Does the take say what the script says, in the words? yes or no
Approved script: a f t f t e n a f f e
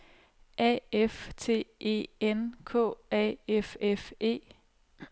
no